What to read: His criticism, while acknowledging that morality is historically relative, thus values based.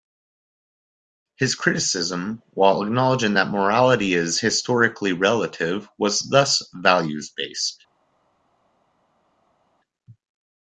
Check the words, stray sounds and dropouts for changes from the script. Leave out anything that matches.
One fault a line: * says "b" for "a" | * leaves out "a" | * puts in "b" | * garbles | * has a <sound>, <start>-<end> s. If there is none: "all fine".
* puts in "was"